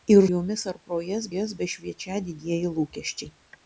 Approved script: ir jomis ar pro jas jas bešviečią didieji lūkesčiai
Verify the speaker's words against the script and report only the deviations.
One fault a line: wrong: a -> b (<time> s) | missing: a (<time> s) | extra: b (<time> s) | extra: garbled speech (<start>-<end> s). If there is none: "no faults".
no faults